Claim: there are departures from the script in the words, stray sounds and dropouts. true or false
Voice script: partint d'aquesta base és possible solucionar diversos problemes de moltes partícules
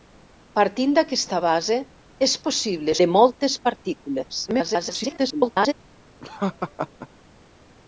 true